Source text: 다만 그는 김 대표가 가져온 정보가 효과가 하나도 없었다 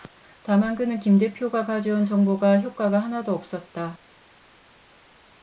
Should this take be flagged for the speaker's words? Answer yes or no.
no